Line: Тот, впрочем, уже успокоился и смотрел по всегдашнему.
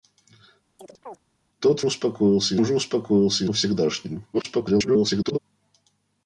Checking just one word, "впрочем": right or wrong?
wrong